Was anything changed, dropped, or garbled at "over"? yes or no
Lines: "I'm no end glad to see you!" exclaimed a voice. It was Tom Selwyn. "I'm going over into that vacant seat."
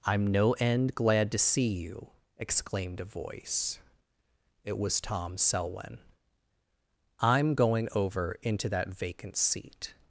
no